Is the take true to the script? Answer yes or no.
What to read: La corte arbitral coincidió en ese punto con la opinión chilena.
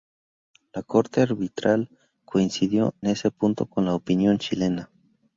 no